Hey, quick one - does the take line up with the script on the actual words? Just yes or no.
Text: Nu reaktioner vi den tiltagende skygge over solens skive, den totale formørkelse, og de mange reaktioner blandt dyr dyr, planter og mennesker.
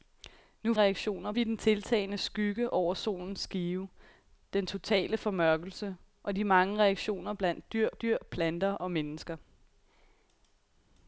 yes